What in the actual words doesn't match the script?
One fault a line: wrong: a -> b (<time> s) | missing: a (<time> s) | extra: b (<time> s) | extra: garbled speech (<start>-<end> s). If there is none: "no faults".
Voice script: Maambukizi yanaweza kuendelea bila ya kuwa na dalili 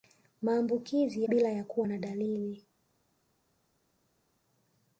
missing: yanaweza kuendelea (1.2 s)